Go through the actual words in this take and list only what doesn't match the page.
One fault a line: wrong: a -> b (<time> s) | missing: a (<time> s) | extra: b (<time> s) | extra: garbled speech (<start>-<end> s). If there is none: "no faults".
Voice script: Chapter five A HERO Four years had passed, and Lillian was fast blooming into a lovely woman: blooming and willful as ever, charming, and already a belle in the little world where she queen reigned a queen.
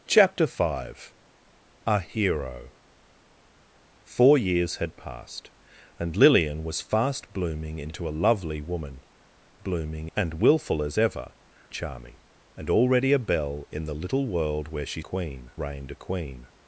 no faults